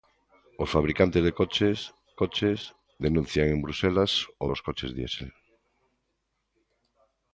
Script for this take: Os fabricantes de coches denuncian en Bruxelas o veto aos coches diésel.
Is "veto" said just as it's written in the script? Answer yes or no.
no